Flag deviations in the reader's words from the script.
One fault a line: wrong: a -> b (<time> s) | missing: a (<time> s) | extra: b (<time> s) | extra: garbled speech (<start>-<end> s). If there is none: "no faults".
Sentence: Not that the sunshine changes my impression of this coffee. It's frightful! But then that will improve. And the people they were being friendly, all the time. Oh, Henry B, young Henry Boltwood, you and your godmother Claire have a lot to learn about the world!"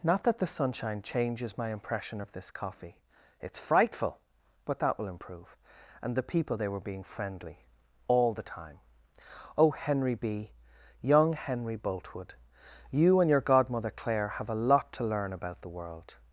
missing: then (4.8 s)